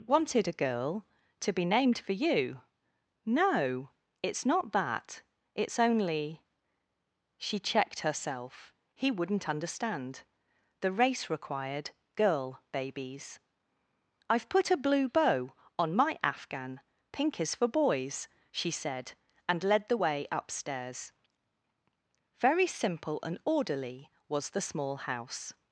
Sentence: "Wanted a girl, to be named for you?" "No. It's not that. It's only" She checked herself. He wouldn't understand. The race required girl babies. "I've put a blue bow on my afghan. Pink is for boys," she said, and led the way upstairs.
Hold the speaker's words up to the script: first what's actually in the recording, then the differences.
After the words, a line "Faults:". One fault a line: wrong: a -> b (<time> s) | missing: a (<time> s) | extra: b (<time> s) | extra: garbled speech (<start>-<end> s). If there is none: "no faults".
"Wanted a girl, to be named for you?" "No. It's not that. It's only" She checked herself. He wouldn't understand. The race required girl babies. "I've put a blue bow on my afghan. Pink is for boys," she said, and led the way upstairs. Very simple and orderly was the small house
Faults:
extra: Very simple and orderly was the small house (22.4 s)